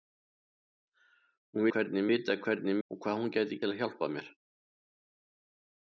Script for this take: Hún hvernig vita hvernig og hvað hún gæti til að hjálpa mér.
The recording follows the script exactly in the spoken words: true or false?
true